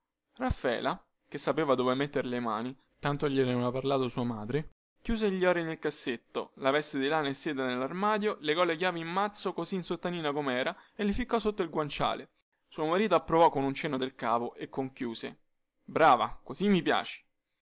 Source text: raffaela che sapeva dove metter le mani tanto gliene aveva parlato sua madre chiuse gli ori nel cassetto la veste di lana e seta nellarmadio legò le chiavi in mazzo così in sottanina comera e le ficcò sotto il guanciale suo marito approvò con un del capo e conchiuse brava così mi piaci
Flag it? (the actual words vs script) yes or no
yes